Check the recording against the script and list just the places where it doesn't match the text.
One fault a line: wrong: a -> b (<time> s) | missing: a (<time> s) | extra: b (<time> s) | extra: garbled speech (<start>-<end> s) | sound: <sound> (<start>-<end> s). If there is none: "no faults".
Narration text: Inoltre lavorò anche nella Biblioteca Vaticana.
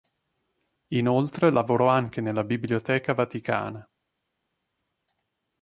no faults